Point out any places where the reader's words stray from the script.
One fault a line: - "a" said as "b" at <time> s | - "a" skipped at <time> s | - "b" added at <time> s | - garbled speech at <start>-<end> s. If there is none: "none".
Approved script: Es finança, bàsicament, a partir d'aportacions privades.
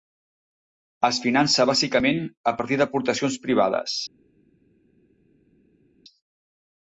none